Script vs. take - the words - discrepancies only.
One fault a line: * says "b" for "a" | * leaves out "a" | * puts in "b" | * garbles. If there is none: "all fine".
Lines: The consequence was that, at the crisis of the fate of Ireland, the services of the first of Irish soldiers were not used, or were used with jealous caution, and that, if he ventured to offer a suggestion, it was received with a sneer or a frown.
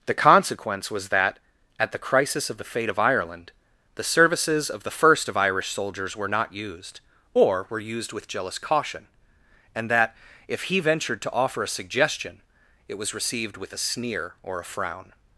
all fine